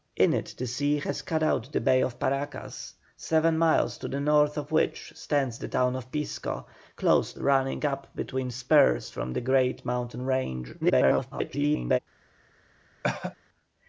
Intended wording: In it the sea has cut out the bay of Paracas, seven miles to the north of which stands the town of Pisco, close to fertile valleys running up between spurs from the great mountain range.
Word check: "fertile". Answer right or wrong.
wrong